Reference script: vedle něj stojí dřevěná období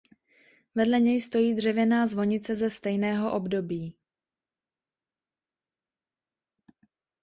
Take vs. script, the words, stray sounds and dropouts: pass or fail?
fail